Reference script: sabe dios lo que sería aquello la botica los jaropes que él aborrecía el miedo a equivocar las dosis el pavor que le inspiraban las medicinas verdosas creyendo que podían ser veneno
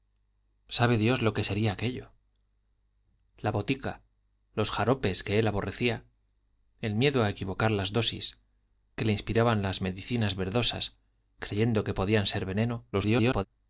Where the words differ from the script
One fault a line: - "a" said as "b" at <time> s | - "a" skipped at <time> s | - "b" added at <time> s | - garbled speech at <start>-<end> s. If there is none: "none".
- "el pavor" skipped at 8.4 s
- garbled speech at 12.9-13.4 s